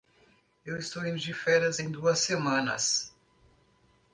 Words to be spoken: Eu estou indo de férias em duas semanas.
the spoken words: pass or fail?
pass